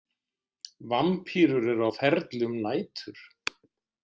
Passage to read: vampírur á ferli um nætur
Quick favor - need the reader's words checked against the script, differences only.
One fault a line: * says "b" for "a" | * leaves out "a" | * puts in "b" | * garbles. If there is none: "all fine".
* puts in "eru"